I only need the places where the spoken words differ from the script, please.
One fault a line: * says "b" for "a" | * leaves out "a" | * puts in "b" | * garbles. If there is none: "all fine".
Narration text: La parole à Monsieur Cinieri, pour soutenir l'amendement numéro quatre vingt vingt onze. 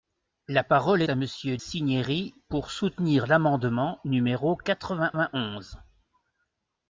all fine